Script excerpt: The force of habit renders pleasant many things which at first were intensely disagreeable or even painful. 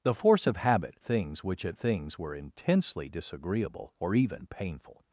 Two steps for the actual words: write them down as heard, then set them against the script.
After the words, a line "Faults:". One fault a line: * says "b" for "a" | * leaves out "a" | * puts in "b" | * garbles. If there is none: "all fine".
The force of habit things which at things were intensely disagreeable or even painful.
Faults:
* leaves out "renders pleasant many"
* says "things" for "first"